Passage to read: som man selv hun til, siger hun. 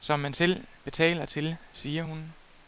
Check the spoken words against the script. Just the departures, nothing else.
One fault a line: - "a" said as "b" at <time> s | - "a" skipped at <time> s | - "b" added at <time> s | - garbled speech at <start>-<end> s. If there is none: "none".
- "hun" said as "betaler" at 0.8 s